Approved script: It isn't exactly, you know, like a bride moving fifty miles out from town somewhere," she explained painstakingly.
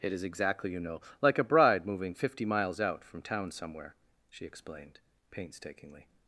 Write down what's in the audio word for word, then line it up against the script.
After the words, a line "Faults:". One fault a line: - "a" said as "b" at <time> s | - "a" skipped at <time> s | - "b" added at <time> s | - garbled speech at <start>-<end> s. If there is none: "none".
It is exactly, you know, like a bride moving fifty miles out from town somewhere," she explained painstakingly.
Faults:
- "isn't" said as "is" at 0.1 s